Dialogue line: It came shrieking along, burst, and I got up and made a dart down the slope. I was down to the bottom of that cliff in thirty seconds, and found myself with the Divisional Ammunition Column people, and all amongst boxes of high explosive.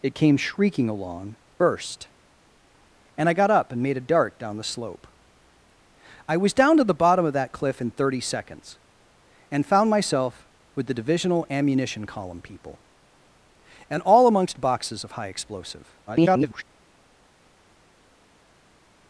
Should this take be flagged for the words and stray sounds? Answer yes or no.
yes